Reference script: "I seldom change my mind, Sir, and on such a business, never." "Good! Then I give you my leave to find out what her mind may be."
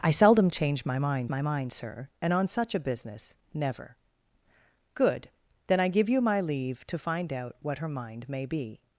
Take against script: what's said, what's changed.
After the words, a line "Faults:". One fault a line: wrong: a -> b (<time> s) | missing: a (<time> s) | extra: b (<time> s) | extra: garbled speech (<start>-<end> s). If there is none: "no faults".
"I seldom change my mind my mind, Sir, and on such a business, never." "Good! Then I give you my leave to find out what her mind may be."
Faults:
extra: my mind (1.3 s)